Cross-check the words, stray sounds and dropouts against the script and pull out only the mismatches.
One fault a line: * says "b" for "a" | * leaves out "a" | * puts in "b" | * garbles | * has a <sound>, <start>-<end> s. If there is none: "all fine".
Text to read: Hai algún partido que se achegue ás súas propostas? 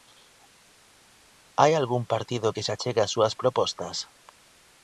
all fine